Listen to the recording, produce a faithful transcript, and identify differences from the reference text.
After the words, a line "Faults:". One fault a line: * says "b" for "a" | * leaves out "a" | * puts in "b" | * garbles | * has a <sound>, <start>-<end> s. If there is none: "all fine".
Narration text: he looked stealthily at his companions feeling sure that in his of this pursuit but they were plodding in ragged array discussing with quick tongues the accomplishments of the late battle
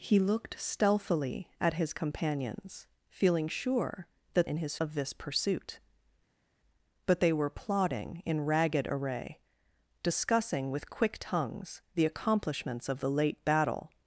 he looked stealthily at his companions feeling sure that in his of this pursuit but they were plodding in ragged array discussing with quick tongues the accomplishments of the late battle
Faults:
all fine